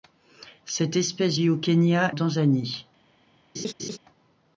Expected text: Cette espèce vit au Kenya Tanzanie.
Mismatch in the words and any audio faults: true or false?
true